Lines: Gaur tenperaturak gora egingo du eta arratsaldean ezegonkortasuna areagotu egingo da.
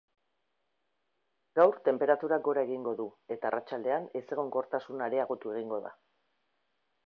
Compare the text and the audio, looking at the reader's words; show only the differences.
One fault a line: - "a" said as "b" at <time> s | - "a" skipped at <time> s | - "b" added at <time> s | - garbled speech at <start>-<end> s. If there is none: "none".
none